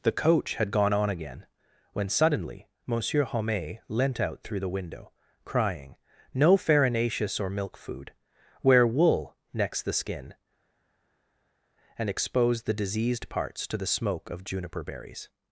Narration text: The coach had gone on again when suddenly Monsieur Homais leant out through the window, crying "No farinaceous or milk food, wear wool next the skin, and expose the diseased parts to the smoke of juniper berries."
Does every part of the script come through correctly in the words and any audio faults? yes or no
yes